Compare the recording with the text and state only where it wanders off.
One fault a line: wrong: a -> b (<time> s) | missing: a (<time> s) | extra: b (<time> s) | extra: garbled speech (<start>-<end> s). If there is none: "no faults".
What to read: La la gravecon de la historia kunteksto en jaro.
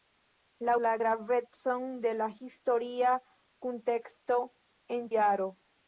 no faults